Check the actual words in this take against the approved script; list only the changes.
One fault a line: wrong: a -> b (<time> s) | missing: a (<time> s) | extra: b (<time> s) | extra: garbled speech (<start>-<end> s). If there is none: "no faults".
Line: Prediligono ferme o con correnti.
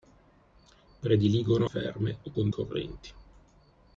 no faults